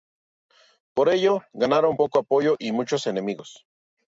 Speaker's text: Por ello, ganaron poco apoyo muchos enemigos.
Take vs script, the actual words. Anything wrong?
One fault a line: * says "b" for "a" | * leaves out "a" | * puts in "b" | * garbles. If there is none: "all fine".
* puts in "y"